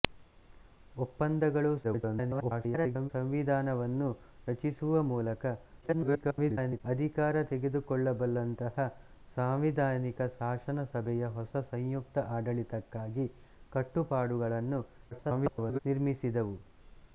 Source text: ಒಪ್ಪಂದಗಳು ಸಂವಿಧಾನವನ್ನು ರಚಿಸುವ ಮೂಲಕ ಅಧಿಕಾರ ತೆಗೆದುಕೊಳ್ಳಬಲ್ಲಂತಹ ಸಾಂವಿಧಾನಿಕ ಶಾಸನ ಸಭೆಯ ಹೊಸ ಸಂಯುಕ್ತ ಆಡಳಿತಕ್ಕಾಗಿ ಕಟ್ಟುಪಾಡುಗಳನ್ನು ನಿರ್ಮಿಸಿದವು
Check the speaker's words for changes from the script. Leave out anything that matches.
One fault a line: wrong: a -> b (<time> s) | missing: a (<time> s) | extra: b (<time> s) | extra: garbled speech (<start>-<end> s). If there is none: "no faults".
extra: garbled speech (1.8-3.1 s)
extra: garbled speech (5.8-6.8 s)
extra: garbled speech (15.1-15.8 s)